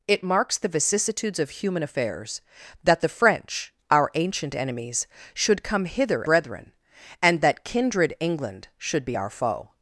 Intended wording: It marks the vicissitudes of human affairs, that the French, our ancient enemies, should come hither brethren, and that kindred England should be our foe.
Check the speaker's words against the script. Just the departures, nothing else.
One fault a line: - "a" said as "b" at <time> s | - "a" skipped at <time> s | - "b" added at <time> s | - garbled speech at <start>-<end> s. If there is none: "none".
none